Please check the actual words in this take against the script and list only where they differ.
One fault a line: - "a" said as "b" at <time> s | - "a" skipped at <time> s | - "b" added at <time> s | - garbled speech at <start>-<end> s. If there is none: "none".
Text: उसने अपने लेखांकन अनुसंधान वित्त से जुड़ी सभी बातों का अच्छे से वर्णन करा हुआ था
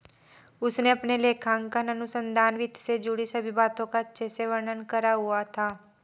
none